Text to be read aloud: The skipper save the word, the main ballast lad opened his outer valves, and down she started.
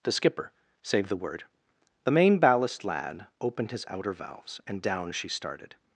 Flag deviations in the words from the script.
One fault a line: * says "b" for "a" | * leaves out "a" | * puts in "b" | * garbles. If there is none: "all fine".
all fine